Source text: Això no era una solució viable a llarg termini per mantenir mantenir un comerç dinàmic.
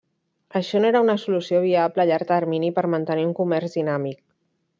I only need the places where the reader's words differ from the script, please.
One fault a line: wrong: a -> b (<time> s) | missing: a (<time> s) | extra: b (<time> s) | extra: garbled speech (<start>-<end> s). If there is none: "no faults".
missing: mantenir (3.3 s)